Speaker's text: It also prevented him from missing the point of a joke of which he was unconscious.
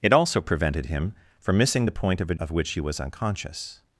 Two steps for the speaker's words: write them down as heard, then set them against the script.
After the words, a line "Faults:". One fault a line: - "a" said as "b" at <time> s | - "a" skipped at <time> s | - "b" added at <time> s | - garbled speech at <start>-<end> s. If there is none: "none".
It also prevented him from missing the point of a of which he was unconscious.
Faults:
- "joke" skipped at 2.3 s